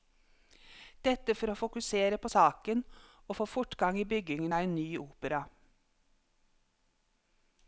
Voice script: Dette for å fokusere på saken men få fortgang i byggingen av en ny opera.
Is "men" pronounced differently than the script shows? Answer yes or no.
yes